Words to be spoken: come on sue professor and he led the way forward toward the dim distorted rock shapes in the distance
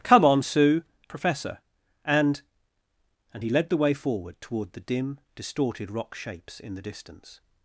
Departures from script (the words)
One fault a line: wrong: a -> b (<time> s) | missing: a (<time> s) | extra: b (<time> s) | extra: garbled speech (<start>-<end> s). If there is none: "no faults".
extra: and (3.3 s)